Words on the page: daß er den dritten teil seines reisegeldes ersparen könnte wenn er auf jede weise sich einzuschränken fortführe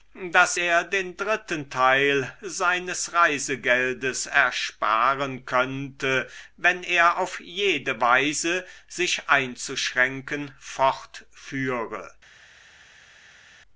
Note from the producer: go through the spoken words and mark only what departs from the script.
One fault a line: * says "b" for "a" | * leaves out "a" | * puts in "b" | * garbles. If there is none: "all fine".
all fine